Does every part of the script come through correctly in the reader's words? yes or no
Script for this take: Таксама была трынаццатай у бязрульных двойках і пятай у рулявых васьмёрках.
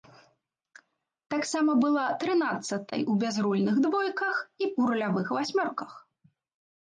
no